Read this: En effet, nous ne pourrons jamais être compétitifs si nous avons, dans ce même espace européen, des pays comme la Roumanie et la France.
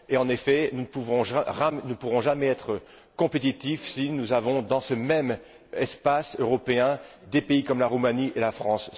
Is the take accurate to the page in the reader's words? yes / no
yes